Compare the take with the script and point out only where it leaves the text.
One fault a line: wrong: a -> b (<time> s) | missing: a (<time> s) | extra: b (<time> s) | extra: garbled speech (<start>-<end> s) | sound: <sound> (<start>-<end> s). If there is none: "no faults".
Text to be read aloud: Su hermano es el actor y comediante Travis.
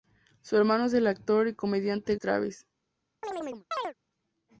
sound: chirp (3.2-3.9 s)